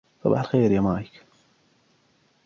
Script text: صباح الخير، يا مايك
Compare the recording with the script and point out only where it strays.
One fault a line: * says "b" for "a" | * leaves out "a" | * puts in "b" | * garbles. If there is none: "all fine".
all fine